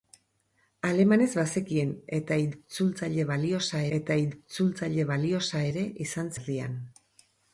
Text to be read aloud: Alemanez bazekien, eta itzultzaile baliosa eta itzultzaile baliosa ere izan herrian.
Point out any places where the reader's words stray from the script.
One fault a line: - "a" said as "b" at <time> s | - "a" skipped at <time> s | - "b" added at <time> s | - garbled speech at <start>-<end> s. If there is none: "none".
none